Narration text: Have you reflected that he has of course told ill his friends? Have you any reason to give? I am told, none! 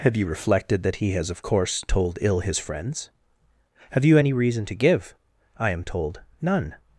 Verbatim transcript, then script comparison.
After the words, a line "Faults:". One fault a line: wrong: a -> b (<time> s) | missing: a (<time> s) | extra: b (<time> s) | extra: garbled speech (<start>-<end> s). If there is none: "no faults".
Have you reflected that he has of course told ill his friends? Have you any reason to give? I am told, none!
Faults:
no faults